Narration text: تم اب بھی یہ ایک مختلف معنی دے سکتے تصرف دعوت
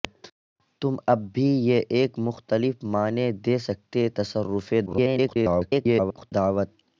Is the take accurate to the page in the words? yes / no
no